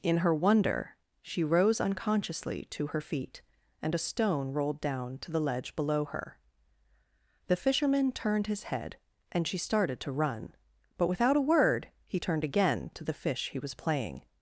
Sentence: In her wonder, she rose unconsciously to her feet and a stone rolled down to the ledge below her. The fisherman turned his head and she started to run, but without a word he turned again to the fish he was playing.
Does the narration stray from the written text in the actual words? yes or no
no